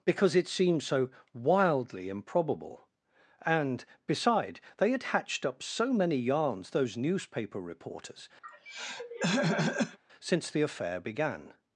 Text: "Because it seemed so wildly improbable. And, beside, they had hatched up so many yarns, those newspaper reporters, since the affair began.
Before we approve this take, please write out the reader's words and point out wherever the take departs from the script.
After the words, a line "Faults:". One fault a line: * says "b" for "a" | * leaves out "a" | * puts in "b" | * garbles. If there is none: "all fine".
"Because it seemed so wildly improbable. And, beside, they had hatched up so many yarns, those newspaper reporters, since the affair began.
Faults:
all fine